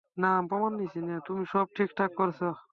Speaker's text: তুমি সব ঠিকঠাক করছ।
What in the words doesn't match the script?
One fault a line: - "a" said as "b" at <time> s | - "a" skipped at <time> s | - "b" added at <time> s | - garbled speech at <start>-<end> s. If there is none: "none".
none